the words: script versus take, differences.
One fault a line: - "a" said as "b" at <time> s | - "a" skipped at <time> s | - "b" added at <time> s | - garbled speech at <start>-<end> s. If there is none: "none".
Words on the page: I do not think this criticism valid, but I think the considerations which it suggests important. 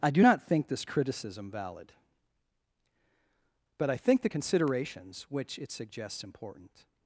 none